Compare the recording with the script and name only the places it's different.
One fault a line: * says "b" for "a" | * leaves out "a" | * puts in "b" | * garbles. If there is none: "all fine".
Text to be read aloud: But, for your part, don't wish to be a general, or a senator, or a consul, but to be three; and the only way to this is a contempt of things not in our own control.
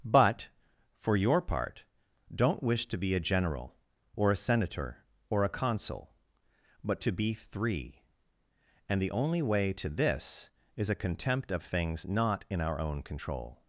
all fine